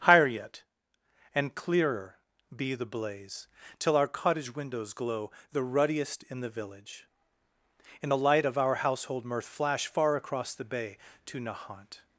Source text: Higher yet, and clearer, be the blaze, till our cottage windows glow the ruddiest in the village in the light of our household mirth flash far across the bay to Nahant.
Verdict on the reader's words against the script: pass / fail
pass